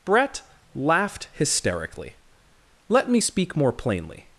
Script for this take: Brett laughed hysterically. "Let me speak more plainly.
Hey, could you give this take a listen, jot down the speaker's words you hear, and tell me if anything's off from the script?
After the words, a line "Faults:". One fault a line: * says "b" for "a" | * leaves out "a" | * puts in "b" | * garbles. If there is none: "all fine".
Brett laughed hysterically. "Let me speak more plainly.
Faults:
all fine